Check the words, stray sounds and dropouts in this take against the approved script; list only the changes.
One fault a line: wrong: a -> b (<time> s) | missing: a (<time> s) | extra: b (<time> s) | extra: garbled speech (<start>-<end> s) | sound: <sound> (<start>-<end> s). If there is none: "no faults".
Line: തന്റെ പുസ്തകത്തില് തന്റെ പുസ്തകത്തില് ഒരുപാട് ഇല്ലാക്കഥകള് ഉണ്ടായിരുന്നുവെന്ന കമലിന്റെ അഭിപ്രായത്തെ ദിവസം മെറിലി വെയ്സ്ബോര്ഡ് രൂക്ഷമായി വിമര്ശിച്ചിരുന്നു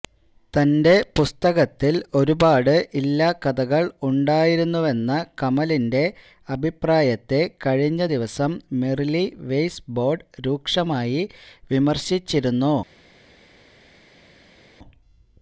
missing: തന്റെ പുസ്തകത്തില് (2.0 s)
extra: കഴിഞ്ഞ (7.7 s)